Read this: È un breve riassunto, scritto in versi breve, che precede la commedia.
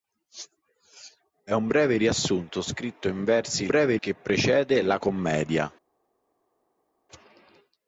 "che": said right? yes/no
yes